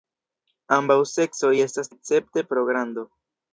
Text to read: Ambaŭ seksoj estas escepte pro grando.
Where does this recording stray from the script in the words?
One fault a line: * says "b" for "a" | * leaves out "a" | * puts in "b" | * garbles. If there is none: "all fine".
all fine